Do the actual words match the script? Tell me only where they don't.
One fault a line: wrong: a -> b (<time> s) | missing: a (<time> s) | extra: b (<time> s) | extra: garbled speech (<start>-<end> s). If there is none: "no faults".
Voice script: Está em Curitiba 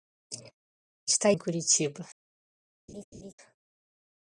no faults